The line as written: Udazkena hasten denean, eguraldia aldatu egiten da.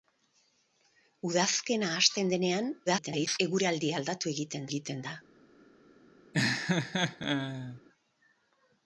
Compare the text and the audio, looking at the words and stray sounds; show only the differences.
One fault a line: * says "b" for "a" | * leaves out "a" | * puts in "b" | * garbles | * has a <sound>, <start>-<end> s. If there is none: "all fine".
* garbles
* puts in "egiten"
* has a laugh, 6.3-7.8 s